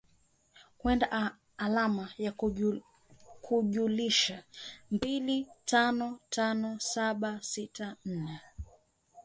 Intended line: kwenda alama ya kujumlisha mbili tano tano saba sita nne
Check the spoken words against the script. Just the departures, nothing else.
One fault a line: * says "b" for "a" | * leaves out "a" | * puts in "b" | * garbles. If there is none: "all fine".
all fine